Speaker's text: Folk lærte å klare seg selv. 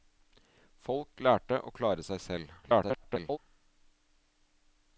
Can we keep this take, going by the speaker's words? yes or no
no